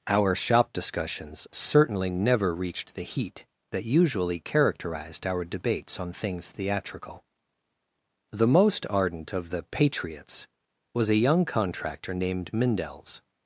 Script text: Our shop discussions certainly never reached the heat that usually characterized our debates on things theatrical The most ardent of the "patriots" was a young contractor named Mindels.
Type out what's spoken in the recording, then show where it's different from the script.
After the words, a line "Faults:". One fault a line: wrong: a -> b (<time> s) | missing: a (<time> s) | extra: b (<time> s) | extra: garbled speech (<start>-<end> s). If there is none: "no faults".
Our shop discussions certainly never reached the heat that usually characterized our debates on things theatrical The most ardent of the "patriots" was a young contractor named Mindels.
Faults:
no faults